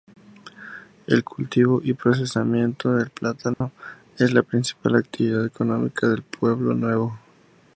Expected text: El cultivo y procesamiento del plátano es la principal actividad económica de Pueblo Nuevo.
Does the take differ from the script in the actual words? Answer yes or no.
no